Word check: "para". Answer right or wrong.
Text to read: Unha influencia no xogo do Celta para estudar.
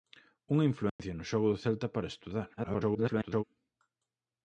right